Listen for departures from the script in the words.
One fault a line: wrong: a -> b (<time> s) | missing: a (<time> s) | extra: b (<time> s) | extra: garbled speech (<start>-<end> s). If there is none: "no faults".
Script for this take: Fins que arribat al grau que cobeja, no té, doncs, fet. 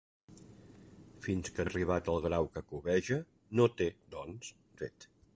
no faults